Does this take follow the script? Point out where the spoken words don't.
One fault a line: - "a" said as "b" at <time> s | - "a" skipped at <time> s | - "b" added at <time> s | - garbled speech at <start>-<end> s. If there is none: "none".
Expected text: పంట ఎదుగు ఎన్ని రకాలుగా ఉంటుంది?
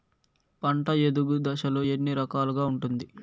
- "దశలు" added at 1.4 s